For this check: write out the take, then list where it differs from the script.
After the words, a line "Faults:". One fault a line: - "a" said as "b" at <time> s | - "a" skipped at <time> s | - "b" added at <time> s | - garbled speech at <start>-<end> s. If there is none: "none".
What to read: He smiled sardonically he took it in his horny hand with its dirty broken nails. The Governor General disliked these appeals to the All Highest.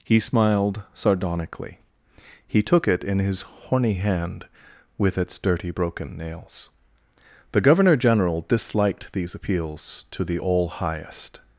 He smiled sardonically he took it in his horny hand with its dirty broken nails. The Governor General disliked these appeals to the All Highest.
Faults:
none